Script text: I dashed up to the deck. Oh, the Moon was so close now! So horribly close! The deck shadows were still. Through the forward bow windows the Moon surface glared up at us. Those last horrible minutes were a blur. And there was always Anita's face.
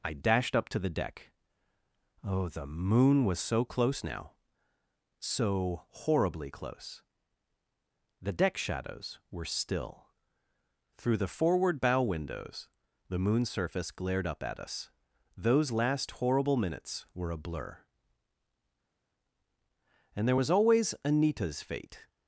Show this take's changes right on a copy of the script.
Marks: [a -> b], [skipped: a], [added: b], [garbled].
I dashed up to the deck. Oh, the Moon was so close now! So horribly close! The deck shadows were still. Through the forward bow windows the Moon surface glared up at us. Those last horrible minutes were a blur. And there was always Anita's [face. -> fate]